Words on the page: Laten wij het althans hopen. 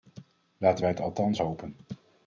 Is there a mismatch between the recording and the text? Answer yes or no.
no